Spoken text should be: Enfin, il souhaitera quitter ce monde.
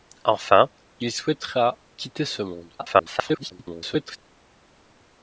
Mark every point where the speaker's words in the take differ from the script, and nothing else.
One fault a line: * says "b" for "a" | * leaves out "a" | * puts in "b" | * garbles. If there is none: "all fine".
* garbles